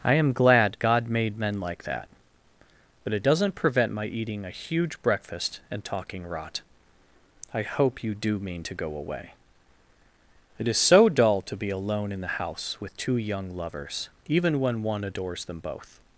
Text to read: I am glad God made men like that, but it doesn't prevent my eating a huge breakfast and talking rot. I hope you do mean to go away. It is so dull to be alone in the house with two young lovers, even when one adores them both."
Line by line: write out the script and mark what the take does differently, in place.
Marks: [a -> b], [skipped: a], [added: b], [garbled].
I am glad God made men like that, but it doesn't prevent my eating a huge breakfast and talking rot. I hope you do mean to go away. It is so dull to be alone in the house with two young lovers, even when one adores them both."